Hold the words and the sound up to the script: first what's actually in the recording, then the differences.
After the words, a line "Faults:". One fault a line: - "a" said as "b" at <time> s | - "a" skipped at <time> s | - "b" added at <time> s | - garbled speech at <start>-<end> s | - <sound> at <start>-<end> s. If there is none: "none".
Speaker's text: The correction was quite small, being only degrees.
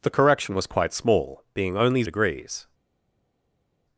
The correction was quite small, being only degrees.
Faults:
none